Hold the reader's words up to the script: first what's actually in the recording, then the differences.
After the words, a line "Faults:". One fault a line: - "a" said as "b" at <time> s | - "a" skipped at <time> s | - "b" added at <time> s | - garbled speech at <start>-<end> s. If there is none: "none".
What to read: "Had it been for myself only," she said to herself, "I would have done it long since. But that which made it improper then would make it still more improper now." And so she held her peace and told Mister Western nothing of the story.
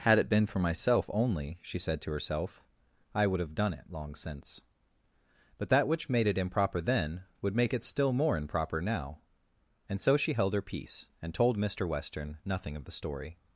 "Had it been for myself only," she said to herself, "I would have done it long since. But that which made it improper then would make it still more improper now." And so she held her peace and told Mister Western nothing of the story.
Faults:
none